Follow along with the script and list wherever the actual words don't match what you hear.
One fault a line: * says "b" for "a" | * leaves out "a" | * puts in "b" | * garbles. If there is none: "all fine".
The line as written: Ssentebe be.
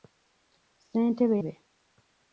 all fine